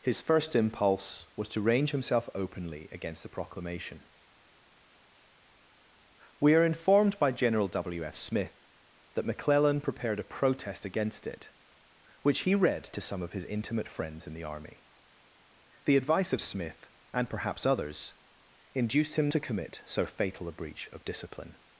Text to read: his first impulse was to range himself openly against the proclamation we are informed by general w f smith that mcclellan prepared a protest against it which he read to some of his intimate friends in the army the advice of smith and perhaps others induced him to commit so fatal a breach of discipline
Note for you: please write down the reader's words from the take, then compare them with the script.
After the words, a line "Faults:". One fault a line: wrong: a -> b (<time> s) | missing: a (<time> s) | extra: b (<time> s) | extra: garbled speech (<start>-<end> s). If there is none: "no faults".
his first impulse was to range himself openly against the proclamation we are informed by general w f smith that mcclellan prepared a protest against it which he read to some of his intimate friends in the army the advice of smith and perhaps others induced him to commit so fatal a breach of discipline
Faults:
no faults